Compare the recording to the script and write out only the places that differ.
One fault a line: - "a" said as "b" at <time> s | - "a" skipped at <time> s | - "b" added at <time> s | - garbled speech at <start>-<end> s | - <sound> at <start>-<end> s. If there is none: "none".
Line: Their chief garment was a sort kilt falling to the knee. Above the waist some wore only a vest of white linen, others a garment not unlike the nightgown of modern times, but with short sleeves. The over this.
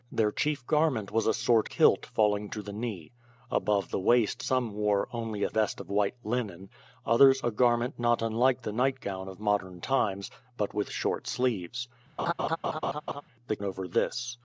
- laugh at 12.2-13.2 s